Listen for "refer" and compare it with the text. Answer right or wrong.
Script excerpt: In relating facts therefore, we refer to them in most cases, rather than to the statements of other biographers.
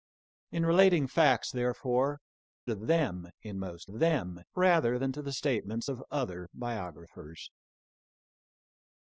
wrong